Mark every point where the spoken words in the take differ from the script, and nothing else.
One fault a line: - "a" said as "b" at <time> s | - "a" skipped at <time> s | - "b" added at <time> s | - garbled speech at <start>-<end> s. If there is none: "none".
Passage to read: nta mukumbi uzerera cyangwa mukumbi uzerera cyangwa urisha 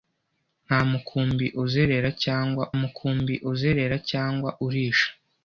none